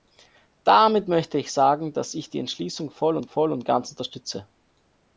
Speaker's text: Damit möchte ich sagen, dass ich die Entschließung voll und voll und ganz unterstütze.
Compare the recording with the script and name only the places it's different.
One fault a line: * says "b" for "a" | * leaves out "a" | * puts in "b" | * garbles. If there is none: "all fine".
all fine